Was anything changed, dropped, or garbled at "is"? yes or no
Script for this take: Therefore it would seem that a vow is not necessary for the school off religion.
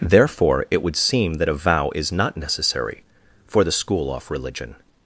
no